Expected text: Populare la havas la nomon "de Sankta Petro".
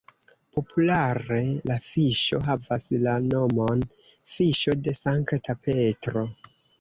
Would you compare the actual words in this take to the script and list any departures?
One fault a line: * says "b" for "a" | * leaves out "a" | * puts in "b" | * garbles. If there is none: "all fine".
* puts in "fiŝo"
* puts in "fiŝo"